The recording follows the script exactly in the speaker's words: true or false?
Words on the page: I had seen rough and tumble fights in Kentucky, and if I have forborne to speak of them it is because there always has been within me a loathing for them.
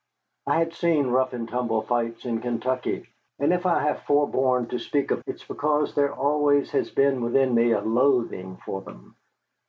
false